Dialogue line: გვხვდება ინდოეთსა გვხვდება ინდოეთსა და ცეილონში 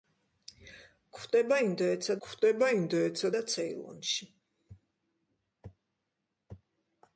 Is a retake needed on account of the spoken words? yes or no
no